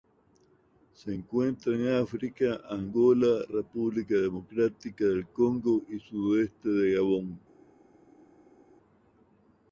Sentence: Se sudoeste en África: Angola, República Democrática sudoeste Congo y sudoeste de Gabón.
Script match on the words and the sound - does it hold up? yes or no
no